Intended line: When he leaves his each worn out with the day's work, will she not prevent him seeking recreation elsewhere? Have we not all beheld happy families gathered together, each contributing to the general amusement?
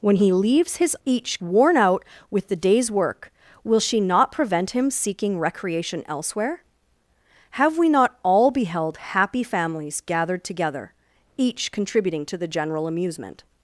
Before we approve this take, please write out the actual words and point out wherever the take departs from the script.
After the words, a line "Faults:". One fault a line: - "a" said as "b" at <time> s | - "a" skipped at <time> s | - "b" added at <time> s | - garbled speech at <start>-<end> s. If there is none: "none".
When he leaves his each worn out with the day's work, will she not prevent him seeking recreation elsewhere? Have we not all beheld happy families gathered together, each contributing to the general amusement?
Faults:
none